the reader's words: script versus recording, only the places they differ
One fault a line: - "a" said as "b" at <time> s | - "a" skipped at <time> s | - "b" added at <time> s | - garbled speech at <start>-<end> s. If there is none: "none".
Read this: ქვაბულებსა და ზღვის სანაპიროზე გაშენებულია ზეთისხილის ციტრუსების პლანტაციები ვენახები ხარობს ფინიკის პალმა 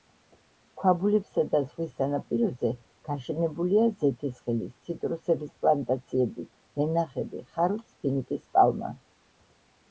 none